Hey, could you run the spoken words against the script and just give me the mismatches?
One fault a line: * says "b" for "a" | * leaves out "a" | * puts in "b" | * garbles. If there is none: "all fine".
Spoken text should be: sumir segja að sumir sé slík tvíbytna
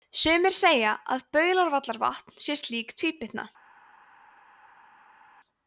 * says "baulárvallavatn" for "sumir"